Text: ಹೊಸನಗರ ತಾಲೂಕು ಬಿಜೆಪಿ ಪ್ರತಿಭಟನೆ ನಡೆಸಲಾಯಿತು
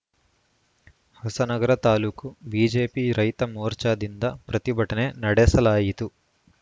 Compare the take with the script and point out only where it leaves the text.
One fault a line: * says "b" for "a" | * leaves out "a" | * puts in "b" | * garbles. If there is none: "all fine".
* puts in "ರೈತ ಮೋರ್ಚಾದಿಂದ"